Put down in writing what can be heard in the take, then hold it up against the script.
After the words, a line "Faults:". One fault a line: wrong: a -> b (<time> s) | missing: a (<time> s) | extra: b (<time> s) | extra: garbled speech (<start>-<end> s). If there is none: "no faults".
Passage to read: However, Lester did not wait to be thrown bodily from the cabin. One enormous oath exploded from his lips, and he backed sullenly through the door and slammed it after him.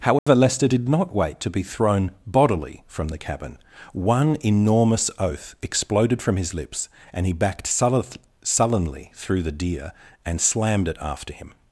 However, Lester did not wait to be thrown bodily from the cabin. One enormous oath exploded from his lips, and he backed sullenly through the deer and slammed it after him.
Faults:
wrong: door -> deer (9.5 s)